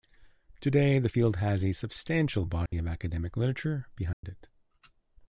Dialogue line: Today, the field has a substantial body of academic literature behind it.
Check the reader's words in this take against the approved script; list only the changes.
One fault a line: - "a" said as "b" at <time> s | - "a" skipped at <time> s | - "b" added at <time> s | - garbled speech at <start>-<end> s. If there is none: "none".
none